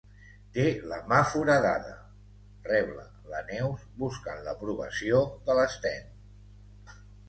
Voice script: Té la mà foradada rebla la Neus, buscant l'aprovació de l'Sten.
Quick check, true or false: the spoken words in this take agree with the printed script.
true